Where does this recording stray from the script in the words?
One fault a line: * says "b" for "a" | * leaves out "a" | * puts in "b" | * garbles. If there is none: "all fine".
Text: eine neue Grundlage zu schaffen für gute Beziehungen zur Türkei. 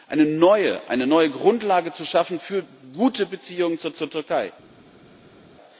* puts in "zur"